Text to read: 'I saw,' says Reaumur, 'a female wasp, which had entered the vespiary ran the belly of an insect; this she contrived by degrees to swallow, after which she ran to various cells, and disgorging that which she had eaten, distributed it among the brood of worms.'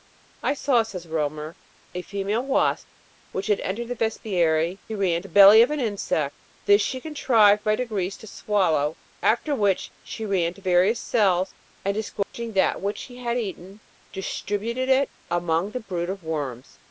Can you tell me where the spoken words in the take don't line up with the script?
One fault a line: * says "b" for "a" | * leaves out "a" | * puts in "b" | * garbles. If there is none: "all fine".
all fine